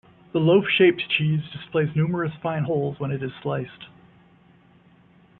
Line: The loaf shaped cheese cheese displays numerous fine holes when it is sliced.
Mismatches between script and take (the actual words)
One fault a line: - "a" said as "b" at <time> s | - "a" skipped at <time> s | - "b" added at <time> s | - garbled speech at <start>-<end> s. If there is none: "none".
- "cheese" skipped at 1.4 s